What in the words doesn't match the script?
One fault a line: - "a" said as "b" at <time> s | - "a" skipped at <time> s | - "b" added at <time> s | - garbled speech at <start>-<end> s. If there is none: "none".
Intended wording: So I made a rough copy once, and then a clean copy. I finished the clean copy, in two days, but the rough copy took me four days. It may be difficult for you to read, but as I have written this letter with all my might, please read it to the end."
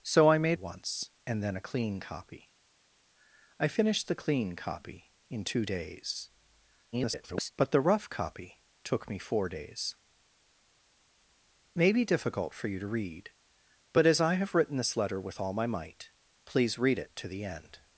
- "a rough copy" skipped at 0.6 s
- garbled speech at 6.9-7.5 s
- "It" skipped at 9.9 s